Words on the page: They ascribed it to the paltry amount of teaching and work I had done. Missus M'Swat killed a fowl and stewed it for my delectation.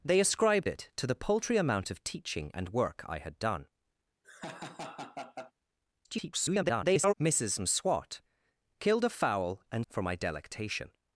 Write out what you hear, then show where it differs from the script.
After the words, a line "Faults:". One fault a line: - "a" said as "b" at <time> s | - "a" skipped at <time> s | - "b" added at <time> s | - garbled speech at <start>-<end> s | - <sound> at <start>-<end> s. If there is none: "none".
They ascribed it to the paltry amount of teaching and work I had done. [garbled] Missus M'Swat killed a fowl and for my delectation.
Faults:
- laugh at 4.2-5.5 s
- garbled speech at 6.0-7.1 s
- "stewed it" skipped at 9.9 s